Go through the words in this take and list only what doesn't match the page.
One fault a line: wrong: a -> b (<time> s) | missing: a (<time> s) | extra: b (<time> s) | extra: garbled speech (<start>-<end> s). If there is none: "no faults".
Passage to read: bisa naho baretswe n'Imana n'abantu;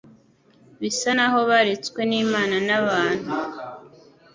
no faults